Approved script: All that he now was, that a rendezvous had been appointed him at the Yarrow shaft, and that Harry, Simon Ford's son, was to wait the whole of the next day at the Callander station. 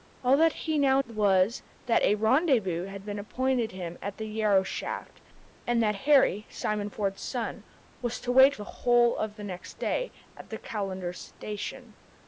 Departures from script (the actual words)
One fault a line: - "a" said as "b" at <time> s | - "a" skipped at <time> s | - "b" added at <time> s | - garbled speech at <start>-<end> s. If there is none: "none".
none